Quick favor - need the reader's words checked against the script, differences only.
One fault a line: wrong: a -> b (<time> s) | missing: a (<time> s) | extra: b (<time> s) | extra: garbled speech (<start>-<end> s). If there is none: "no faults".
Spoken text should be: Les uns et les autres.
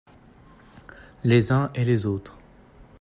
no faults